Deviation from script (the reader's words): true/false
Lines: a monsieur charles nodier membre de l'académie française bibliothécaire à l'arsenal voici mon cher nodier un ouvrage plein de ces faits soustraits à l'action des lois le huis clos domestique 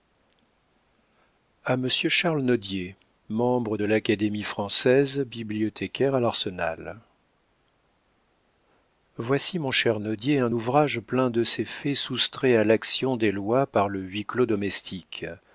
true